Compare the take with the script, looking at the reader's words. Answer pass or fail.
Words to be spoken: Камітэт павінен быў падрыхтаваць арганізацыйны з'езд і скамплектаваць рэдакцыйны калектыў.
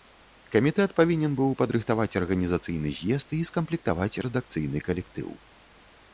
pass